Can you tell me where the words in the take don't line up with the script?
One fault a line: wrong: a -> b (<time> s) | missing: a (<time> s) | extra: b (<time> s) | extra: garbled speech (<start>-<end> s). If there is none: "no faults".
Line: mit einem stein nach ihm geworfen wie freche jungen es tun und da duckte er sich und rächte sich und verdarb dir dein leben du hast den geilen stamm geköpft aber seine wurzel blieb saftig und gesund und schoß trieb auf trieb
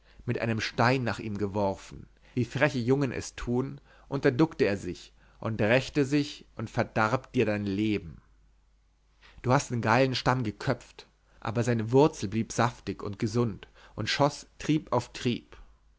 no faults